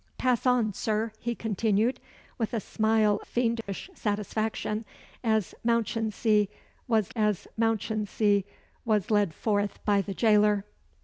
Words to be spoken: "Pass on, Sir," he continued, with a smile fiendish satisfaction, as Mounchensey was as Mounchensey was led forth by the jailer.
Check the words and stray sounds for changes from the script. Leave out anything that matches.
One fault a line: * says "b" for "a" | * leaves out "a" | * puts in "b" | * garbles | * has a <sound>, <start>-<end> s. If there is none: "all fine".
* has a dropout, 3.6-3.7 s